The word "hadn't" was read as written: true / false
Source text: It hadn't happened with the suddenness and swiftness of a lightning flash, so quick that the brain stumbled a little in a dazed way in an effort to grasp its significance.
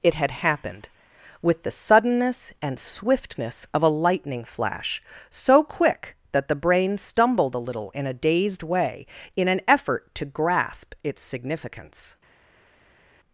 false